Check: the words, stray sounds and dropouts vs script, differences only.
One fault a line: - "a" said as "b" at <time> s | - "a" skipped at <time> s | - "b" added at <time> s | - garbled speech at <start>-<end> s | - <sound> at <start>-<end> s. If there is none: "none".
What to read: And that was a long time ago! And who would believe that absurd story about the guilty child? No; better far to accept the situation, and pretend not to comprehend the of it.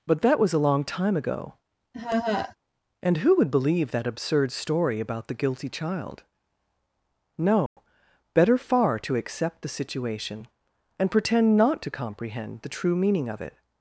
- "And" said as "But" at 0.1 s
- laugh at 1.9-2.6 s
- dropout at 7.7-7.8 s
- "true meaning" added at 12.7 s